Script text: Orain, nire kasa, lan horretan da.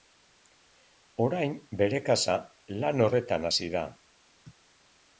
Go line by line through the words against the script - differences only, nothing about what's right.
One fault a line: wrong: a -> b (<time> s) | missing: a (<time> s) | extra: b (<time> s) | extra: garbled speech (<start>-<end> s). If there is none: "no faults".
wrong: nire -> bere (1.8 s)
extra: hasi (3.5 s)